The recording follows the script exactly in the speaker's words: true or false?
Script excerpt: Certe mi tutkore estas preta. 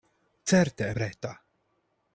false